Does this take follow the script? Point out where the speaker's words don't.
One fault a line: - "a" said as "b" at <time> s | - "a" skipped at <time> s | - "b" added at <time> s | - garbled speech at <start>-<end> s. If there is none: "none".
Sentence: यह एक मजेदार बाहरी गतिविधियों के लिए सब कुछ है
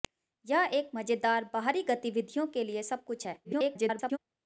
- garbled speech at 3.4-4.2 s